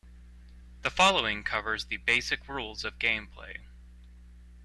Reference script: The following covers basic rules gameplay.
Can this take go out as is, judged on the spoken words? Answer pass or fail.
fail